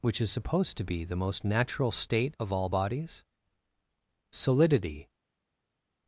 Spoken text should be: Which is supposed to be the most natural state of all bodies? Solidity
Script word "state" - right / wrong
right